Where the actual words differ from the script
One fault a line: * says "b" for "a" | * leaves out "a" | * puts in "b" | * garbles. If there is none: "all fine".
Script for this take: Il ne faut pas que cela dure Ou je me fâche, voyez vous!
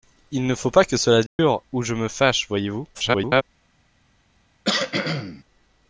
* garbles